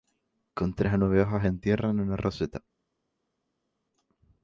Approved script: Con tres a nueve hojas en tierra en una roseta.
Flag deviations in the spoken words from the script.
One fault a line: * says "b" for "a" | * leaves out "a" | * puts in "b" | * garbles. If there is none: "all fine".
all fine